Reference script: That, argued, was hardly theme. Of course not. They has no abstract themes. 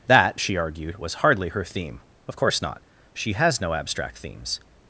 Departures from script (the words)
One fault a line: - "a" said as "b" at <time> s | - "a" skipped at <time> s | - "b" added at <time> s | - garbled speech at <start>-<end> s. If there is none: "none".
- "she" added at 0.4 s
- "her" added at 1.5 s
- "They" said as "She" at 3.1 s